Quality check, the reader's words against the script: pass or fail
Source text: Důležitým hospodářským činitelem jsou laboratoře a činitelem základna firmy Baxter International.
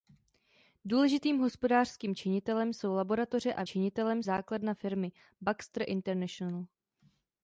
pass